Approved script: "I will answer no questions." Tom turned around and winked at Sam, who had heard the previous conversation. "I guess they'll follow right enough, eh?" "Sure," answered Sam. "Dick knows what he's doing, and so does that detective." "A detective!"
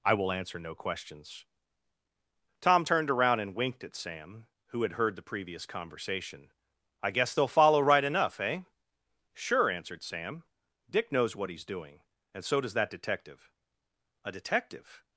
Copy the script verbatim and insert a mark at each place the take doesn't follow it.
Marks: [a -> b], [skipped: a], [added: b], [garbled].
"I will answer no questions." Tom turned around and winked at Sam, who had heard the previous conversation. "I guess they'll follow right enough, eh?" "Sure," answered Sam. "Dick knows what he's doing, and so does that detective." "A detective!"